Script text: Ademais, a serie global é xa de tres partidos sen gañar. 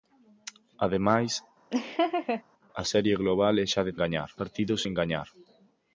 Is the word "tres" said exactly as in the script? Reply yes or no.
no